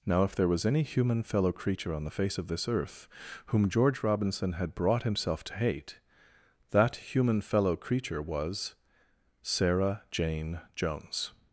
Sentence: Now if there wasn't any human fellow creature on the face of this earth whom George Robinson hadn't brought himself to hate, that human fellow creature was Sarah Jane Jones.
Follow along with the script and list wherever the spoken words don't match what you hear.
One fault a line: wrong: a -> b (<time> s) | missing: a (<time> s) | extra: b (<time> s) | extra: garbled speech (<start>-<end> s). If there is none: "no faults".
wrong: wasn't -> was (0.5 s)
wrong: hadn't -> had (4.5 s)